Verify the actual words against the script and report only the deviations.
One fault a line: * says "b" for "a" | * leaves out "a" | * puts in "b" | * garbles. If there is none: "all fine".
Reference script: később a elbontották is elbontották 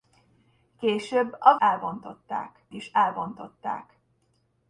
all fine